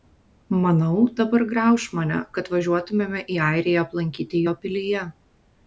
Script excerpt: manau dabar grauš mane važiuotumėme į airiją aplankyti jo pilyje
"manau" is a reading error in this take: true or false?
false